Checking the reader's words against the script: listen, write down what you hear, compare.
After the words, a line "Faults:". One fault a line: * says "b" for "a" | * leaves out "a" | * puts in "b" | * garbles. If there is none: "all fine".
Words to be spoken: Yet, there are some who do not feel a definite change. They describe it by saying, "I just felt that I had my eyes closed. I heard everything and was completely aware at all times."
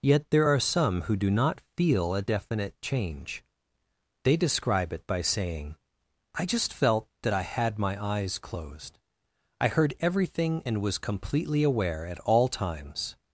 Yet, there are some who do not feel a definite change. They describe it by saying, "I just felt that I had my eyes closed. I heard everything and was completely aware at all times."
Faults:
all fine